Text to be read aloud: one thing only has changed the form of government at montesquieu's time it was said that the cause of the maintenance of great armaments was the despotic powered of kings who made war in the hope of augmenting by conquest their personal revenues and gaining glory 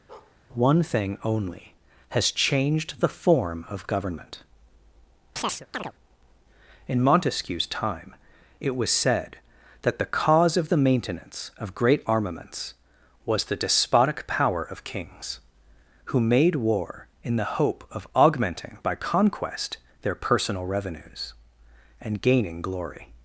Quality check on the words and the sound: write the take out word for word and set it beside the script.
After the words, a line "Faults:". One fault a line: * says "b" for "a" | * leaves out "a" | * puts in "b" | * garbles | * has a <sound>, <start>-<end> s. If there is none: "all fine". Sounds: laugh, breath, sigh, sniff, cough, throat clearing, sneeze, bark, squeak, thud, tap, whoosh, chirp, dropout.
one thing only has changed the form of government in montesquieu's time it was said that the cause of the maintenance of great armaments was the despotic power of kings who made war in the hope of augmenting by conquest their personal revenues and gaining glory
Faults:
* has a bark, 0.1-0.4 s
* has a chirp, 5.4-5.9 s
* says "in" for "at"
* says "power" for "powered"